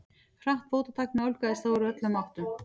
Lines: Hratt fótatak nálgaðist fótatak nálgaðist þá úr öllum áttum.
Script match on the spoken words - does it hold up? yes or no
no